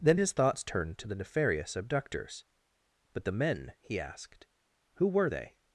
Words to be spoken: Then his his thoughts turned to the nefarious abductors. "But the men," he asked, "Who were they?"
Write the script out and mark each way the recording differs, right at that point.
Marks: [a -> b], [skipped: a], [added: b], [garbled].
Then his [skipped: his] thoughts turned to the nefarious abductors. "But the men," he asked, "Who were they?"